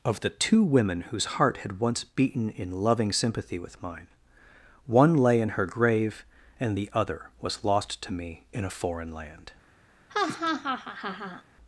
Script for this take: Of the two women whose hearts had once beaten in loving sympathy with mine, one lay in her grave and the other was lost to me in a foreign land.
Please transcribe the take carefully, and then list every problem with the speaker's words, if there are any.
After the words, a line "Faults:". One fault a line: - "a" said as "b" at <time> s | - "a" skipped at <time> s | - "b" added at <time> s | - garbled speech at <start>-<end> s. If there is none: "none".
Of the two women whose heart had once beaten in loving sympathy with mine, one lay in her grave and the other was lost to me in a foreign land.
Faults:
- "hearts" said as "heart" at 1.2 s